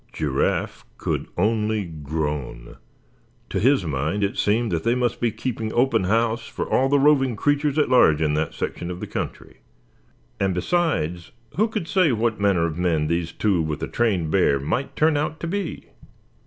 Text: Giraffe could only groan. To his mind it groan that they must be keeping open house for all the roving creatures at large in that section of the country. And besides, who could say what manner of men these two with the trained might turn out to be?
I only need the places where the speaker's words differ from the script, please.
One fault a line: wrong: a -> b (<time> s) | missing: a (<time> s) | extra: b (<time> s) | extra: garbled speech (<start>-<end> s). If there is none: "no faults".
wrong: groan -> seemed (4.4 s)
extra: bear (14.3 s)